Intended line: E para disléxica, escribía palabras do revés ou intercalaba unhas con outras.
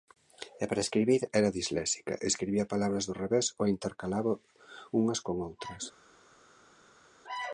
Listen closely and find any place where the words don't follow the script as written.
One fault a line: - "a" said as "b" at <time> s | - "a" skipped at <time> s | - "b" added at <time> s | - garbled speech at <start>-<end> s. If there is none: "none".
- "escribir era" added at 0.8 s